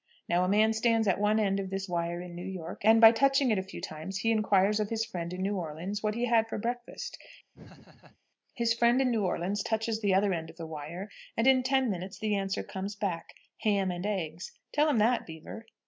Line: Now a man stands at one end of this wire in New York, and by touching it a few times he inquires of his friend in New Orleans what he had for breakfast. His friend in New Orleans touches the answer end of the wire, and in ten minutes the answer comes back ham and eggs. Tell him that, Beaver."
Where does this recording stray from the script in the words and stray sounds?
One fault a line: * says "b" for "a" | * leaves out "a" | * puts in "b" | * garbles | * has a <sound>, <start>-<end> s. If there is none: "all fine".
* has a laugh, 7.5-8.2 s
* says "other" for "answer"